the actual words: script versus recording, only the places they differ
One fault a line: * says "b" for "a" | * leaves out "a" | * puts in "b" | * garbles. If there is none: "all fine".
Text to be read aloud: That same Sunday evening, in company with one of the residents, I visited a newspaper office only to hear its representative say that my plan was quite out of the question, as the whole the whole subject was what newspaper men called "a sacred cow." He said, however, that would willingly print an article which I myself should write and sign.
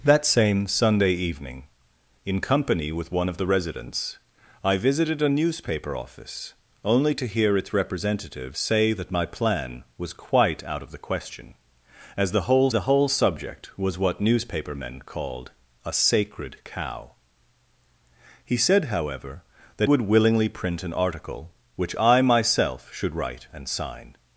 all fine